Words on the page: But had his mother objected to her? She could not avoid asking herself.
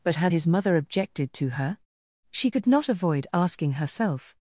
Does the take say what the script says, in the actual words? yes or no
yes